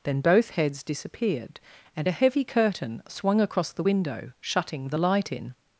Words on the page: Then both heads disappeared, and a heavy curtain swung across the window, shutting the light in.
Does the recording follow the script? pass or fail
pass